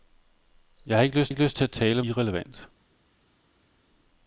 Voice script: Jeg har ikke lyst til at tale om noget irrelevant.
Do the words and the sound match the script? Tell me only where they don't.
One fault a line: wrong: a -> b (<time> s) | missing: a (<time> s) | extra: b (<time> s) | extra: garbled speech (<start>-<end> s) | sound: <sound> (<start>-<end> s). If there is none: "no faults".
extra: ikke lyst (1.3 s)
missing: noget (2.0 s)